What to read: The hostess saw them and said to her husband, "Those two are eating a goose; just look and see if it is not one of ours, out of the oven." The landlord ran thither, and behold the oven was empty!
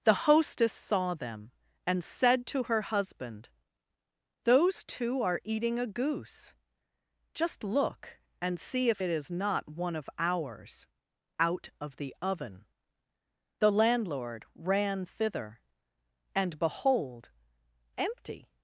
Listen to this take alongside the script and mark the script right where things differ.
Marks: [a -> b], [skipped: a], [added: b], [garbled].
The hostess saw them and said to her husband, "Those two are eating a goose; just look and see if it is not one of ours, out of the oven." The landlord ran thither, and behold [skipped: the oven was] empty!